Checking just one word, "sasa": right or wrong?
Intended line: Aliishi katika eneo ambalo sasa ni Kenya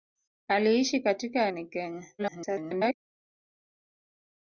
wrong